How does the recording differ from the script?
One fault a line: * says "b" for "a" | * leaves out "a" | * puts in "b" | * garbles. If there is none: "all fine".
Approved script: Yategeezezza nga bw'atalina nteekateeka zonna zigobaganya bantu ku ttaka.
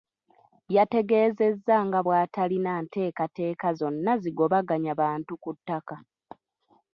all fine